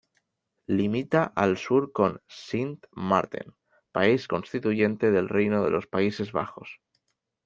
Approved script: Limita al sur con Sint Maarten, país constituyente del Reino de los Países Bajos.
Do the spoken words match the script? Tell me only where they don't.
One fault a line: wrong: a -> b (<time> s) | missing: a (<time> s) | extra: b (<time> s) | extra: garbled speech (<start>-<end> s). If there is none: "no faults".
no faults